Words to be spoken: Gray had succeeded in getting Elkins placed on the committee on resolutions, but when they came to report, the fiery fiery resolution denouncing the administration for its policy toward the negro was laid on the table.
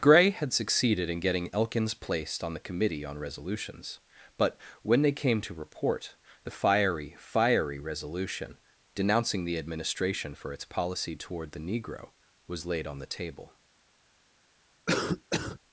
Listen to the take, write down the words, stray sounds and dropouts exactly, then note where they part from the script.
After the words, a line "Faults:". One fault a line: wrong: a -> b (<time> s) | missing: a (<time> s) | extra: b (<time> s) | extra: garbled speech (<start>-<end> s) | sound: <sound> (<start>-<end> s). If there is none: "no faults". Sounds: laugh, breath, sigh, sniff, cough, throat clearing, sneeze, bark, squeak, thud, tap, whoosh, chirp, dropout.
Gray had succeeded in getting Elkins placed on the committee on resolutions, but when they came to report, the fiery fiery resolution denouncing the administration for its policy toward the negro was laid on the table.
Faults:
sound: cough (14.9-15.6 s)